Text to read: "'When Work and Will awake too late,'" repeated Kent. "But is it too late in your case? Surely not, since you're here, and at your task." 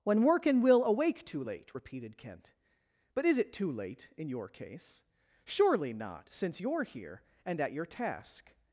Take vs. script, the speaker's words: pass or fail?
pass